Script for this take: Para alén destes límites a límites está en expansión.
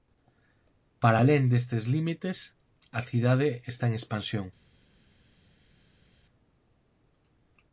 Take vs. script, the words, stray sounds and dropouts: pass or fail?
fail